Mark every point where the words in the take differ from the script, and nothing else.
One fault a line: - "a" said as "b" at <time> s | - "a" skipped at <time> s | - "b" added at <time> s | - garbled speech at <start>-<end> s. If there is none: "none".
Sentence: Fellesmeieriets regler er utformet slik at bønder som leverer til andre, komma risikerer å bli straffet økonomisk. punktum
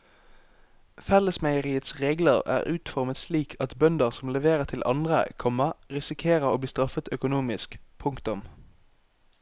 none